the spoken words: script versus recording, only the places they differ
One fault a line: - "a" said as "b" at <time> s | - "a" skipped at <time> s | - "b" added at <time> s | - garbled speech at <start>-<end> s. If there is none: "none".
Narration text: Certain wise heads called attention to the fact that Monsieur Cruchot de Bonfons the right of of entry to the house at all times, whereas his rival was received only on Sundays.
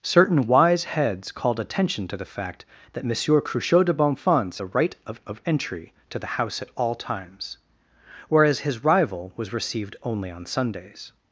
none